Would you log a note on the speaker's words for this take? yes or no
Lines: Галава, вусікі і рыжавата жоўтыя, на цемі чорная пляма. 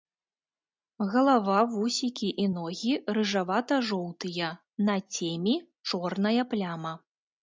yes